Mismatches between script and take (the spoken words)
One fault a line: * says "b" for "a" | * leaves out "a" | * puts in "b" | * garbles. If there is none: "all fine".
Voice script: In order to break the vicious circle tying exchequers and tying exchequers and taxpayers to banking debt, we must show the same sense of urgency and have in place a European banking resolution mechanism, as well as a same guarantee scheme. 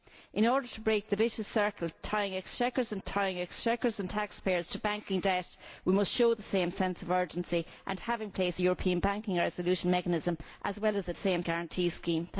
all fine